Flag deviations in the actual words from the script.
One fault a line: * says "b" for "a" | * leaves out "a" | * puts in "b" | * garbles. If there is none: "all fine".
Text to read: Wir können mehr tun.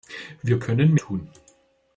* leaves out "mehr"